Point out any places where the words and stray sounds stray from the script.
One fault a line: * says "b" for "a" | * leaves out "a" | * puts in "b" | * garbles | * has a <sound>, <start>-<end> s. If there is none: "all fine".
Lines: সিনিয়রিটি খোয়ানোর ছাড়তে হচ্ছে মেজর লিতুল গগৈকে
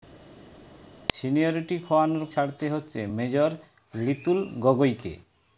all fine